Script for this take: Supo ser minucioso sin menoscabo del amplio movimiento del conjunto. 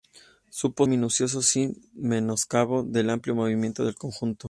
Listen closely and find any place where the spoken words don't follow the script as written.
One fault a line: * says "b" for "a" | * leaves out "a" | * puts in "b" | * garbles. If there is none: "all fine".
* leaves out "ser"